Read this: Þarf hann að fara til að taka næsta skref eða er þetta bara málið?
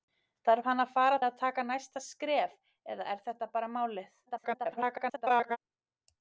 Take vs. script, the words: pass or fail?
fail